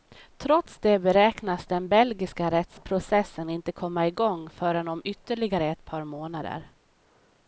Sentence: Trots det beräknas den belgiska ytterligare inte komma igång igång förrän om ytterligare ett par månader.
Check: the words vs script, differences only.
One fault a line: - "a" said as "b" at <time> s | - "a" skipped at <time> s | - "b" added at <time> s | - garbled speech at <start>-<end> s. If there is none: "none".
- "ytterligare" said as "rättsprocessen" at 2.5 s
- "igång" skipped at 4.5 s